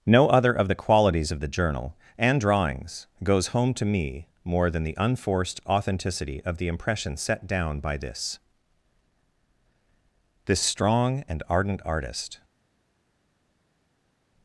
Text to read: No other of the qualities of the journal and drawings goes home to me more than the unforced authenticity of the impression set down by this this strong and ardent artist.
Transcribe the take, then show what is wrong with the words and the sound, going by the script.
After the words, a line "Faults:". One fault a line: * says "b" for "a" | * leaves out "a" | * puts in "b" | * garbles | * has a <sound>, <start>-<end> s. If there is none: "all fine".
No other of the qualities of the journal and drawings goes home to me more than the unforced authenticity of the impression set down by this this strong and ardent artist.
Faults:
all fine